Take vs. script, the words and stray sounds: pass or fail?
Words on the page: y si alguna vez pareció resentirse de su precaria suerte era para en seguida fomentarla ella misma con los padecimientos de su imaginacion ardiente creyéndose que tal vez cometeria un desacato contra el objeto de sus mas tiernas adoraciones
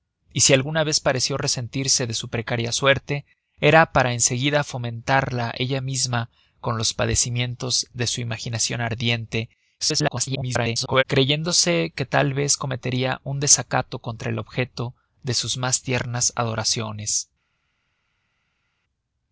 fail